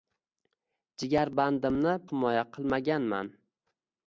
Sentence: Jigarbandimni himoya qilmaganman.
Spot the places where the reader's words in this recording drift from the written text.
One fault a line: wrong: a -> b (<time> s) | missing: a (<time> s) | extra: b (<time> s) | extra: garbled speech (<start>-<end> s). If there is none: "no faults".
no faults